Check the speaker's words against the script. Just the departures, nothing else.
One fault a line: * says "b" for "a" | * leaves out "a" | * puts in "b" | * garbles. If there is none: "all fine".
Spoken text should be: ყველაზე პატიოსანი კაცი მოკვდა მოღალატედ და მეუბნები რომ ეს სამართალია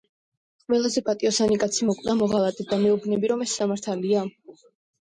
all fine